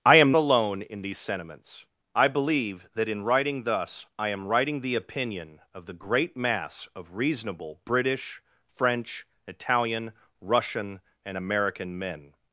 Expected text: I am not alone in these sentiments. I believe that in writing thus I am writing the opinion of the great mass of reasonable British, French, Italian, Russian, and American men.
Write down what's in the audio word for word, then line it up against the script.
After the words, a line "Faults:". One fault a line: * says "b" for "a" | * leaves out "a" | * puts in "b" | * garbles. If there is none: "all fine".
I am alone in these sentiments. I believe that in writing thus I am writing the opinion of the great mass of reasonable British, French, Italian, Russian, and American men.
Faults:
* leaves out "not"